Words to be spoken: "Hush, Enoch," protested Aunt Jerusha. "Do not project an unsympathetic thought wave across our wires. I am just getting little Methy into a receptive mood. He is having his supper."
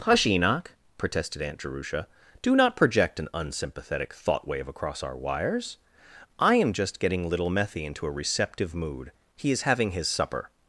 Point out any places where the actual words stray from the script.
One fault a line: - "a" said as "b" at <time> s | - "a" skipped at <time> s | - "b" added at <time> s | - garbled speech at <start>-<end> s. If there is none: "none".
none